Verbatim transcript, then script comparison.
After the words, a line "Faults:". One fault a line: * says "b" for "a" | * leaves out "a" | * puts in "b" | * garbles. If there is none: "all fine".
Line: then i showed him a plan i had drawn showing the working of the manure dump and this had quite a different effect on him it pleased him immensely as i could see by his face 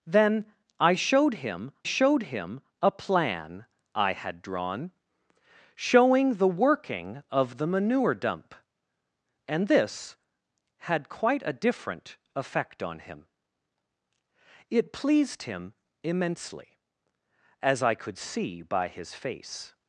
then i showed him showed him a plan i had drawn showing the working of the manure dump and this had quite a different effect on him it pleased him immensely as i could see by his face
Faults:
* puts in "showed him"